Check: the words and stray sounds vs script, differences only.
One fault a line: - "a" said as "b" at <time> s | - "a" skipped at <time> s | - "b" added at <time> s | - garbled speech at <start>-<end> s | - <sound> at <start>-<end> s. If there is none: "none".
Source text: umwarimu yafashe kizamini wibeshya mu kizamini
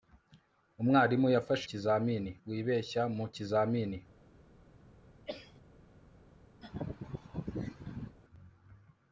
- cough at 5.3-5.6 s
- laugh at 6.6-8.2 s